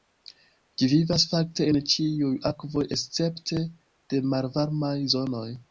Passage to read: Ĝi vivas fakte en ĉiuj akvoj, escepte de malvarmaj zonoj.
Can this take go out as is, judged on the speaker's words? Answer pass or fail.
pass